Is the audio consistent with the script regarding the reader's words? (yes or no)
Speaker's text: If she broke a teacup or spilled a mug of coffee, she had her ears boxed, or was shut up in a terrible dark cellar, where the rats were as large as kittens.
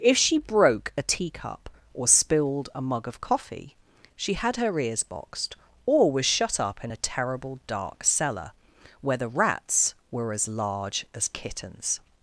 yes